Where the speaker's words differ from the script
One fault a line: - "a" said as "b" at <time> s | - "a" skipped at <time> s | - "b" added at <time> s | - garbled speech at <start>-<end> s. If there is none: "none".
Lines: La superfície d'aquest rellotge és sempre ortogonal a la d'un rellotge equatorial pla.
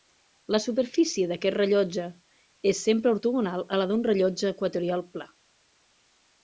none